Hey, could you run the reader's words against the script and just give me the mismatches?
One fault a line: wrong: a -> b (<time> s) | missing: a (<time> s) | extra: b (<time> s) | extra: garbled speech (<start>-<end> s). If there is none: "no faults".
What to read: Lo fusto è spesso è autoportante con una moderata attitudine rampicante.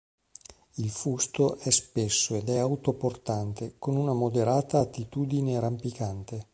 wrong: Lo -> Il (0.8 s)
extra: ed (2.3 s)